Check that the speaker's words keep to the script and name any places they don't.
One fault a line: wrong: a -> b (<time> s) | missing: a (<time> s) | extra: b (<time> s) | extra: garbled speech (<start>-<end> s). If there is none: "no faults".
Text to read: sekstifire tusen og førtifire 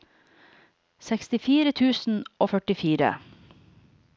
no faults